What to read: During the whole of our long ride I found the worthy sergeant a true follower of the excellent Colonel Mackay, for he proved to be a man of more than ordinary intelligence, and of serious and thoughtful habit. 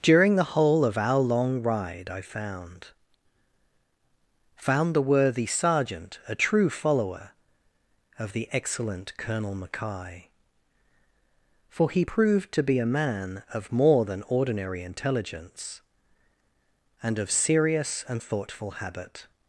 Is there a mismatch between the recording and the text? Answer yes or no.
yes